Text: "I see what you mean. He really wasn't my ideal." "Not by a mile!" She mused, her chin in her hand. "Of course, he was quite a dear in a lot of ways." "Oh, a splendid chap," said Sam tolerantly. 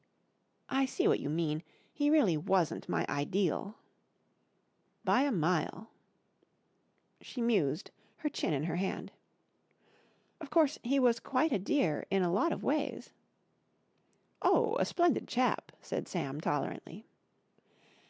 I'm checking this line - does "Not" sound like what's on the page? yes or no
no